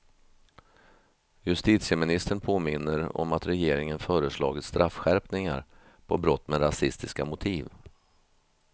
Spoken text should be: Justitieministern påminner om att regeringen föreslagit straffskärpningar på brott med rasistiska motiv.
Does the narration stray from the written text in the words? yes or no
no